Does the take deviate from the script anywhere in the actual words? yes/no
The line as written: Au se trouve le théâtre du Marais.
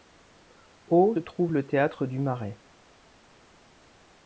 yes